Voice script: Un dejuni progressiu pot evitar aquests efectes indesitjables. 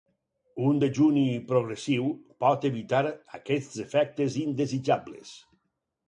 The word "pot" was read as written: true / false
true